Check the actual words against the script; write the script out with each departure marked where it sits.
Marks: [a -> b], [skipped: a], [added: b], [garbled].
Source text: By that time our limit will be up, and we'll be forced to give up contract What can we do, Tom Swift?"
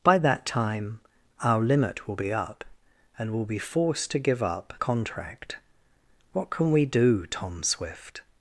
By that time our limit will be up, and we'll be forced to give up contract What can we do, Tom Swift?"